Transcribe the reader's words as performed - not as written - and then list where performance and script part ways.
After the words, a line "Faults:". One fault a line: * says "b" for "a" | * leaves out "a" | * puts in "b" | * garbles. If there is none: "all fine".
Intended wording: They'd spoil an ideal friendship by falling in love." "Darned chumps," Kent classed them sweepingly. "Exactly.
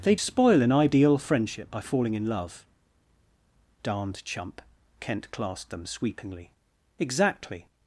They'd spoil an ideal friendship by falling in love." "Darned chump," Kent classed them sweepingly. "Exactly.
Faults:
* says "chump" for "chumps"